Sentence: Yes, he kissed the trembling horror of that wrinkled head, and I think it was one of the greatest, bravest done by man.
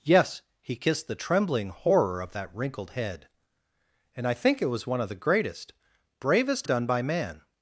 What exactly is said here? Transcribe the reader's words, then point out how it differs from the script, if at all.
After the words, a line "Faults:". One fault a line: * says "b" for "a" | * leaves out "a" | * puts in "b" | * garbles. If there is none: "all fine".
Yes, he kissed the trembling horror of that wrinkled head, and I think it was one of the greatest, bravest done by man.
Faults:
all fine